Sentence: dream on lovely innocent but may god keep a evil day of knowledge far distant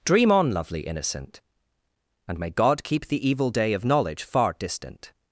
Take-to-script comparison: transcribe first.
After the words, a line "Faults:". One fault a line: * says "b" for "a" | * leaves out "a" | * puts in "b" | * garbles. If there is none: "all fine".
dream on lovely innocent and may god keep the evil day of knowledge far distant
Faults:
* says "and" for "but"
* says "the" for "a"